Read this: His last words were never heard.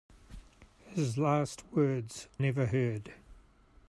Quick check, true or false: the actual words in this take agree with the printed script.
false